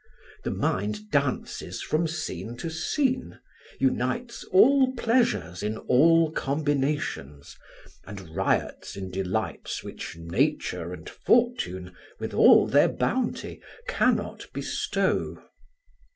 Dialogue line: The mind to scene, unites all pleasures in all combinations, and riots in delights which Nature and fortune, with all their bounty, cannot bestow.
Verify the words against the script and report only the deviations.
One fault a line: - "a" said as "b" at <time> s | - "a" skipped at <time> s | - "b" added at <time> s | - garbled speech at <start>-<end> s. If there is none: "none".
- "dances from scene" added at 1.1 s